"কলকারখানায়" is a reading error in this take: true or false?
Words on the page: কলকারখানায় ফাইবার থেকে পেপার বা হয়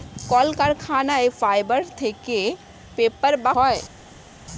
false